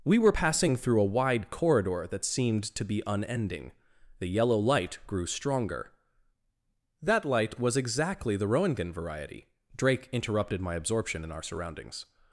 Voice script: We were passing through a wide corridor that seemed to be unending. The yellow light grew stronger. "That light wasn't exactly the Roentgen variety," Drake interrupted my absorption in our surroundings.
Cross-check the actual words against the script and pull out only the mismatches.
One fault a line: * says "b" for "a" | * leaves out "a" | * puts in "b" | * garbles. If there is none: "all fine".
* says "was" for "wasn't"